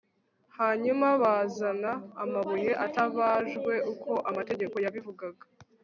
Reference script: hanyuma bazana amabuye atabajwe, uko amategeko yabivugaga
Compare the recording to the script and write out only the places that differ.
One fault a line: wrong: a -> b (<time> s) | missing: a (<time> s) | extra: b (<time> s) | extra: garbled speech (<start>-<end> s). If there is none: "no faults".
no faults